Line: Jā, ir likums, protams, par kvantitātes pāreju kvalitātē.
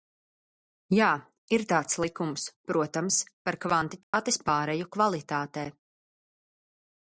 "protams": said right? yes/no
yes